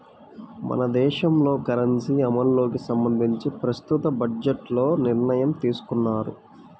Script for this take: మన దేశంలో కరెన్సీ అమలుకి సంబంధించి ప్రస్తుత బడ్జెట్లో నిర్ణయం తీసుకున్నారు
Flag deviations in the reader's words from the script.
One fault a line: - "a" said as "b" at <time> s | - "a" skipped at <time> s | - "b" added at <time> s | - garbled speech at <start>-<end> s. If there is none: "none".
none